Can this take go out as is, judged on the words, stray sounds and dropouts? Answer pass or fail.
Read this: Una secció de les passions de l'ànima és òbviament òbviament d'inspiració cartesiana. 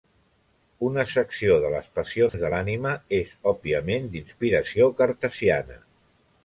fail